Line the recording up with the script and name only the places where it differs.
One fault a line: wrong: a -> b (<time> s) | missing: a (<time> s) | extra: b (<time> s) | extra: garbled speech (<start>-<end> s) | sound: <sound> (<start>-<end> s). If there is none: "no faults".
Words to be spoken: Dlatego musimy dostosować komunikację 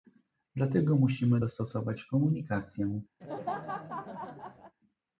sound: laugh (3.2-4.7 s)